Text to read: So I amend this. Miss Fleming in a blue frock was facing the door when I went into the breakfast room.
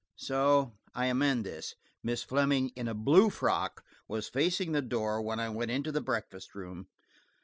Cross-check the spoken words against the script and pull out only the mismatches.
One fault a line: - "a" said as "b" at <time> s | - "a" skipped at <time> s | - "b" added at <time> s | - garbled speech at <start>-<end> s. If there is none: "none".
none